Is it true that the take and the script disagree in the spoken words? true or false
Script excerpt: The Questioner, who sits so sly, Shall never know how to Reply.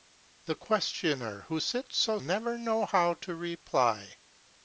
true